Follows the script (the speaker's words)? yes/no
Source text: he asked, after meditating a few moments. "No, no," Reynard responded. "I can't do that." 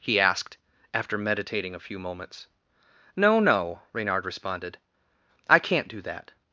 yes